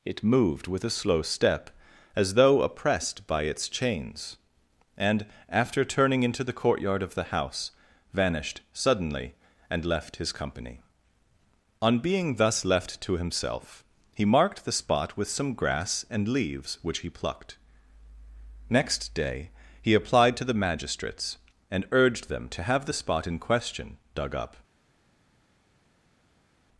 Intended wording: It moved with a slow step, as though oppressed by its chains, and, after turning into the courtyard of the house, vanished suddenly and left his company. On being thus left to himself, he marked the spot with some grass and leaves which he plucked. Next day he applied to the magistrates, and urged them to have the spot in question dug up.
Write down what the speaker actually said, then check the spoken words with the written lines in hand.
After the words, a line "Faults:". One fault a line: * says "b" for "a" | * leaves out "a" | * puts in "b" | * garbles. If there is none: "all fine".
It moved with a slow step, as though oppressed by its chains, and, after turning into the courtyard of the house, vanished suddenly and left his company. On being thus left to himself, he marked the spot with some grass and leaves which he plucked. Next day he applied to the magistrates, and urged them to have the spot in question dug up.
Faults:
all fine